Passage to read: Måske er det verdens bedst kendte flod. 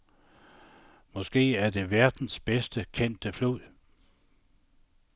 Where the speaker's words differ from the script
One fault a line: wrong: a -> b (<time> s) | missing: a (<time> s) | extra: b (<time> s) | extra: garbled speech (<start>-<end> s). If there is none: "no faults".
no faults